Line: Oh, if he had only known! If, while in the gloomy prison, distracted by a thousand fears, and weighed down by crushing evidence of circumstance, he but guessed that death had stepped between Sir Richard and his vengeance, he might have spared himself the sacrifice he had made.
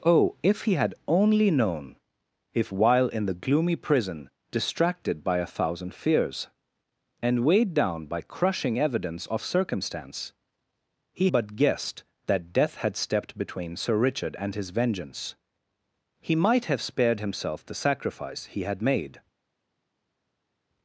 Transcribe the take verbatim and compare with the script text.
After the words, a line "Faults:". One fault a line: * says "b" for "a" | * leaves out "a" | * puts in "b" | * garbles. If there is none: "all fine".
Oh, if he had only known! If, while in the gloomy prison, distracted by a thousand fears, and weighed down by crushing evidence of circumstance, he but guessed that death had stepped between Sir Richard and his vengeance, he might have spared himself the sacrifice he had made.
Faults:
all fine